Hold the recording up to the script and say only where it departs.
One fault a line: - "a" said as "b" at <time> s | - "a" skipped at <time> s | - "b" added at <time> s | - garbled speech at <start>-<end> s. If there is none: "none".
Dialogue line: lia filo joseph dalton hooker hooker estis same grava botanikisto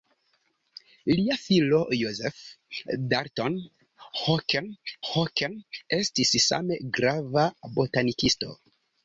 none